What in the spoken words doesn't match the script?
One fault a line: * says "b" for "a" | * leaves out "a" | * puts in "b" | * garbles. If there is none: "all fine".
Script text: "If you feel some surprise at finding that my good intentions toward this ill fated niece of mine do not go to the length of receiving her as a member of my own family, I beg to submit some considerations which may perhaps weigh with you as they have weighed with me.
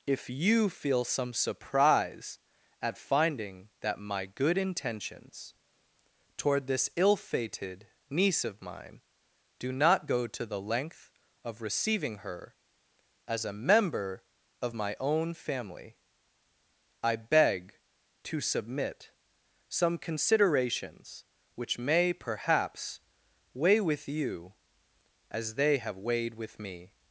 all fine